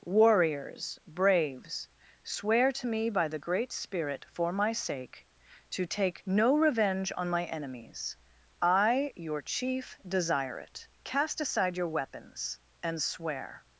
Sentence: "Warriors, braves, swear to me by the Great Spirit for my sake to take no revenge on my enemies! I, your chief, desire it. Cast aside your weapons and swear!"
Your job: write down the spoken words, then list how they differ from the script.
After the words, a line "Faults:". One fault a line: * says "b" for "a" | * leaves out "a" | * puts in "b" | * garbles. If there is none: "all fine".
"Warriors, braves, swear to me by the Great Spirit for my sake to take no revenge on my enemies! I, your chief, desire it. Cast aside your weapons and swear!"
Faults:
all fine